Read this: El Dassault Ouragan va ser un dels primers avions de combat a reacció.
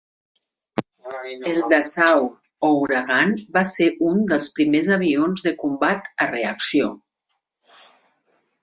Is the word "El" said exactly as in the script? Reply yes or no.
yes